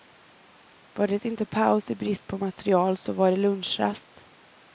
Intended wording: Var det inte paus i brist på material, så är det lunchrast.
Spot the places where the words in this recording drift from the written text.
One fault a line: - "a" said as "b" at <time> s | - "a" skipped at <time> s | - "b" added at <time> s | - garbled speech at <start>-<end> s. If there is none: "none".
- "är" said as "var" at 3.1 s